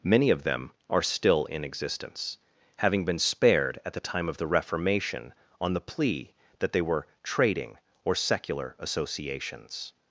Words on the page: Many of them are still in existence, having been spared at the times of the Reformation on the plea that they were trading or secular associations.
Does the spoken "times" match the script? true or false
false